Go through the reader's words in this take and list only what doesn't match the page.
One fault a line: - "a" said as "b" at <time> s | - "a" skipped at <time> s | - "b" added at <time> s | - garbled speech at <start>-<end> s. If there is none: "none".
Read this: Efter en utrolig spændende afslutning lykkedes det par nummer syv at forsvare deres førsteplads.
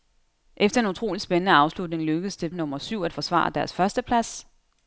- "par" skipped at 2.5 s